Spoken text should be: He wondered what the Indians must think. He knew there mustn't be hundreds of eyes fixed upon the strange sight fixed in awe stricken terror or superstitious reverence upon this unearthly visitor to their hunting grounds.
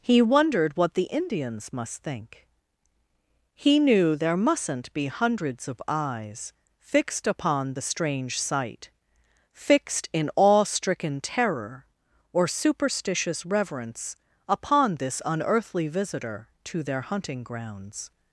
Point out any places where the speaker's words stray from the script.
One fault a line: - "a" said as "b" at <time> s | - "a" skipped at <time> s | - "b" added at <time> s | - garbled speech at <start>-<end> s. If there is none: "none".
none